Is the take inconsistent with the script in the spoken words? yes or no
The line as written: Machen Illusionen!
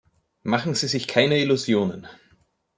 yes